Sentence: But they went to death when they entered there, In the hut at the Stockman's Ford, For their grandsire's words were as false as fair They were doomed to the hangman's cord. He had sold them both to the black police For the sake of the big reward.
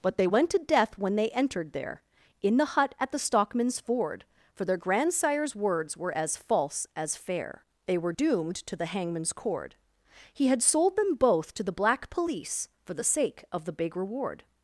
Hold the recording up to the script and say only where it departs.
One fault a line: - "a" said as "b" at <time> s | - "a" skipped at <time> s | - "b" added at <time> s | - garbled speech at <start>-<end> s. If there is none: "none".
none